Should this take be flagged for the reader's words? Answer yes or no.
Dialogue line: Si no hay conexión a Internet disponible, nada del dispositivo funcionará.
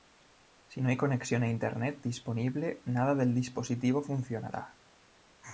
no